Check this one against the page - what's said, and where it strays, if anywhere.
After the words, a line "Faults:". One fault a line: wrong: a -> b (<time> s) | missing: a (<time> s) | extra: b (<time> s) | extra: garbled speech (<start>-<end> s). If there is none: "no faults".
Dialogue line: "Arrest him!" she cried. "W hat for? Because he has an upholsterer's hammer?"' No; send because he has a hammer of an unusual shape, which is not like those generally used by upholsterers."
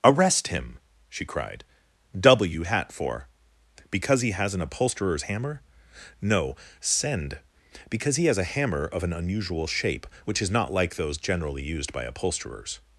"Arrest him!" she cried. "W hat for? Because he has an upholsterer's hammer?"' No; send because he has a hammer of an unusual shape, which is not like those generally used by upholsterers."
Faults:
no faults